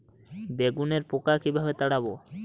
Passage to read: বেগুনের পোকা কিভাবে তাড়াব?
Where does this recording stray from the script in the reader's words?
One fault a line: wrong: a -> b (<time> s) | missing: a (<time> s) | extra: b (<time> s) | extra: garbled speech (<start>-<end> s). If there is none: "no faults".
no faults